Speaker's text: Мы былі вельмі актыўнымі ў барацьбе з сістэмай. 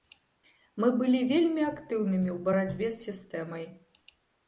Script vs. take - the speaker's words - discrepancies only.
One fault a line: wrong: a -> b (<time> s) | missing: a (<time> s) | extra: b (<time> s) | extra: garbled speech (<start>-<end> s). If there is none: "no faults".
no faults